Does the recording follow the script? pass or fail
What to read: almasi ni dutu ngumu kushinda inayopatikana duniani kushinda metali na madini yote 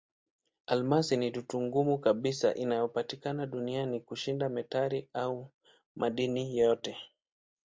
fail